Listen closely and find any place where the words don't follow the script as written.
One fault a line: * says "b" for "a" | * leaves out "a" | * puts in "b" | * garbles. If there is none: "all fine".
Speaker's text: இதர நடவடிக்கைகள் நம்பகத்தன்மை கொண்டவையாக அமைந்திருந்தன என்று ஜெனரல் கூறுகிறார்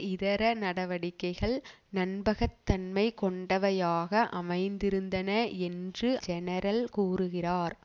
all fine